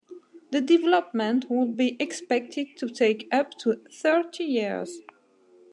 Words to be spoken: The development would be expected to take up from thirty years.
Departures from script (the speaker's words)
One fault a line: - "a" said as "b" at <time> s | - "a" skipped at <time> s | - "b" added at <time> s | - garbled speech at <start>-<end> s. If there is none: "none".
- "from" said as "to" at 3.6 s